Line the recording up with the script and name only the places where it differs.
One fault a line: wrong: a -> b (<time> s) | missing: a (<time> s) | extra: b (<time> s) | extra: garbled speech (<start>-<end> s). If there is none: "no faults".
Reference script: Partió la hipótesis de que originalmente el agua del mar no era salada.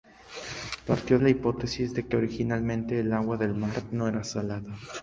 no faults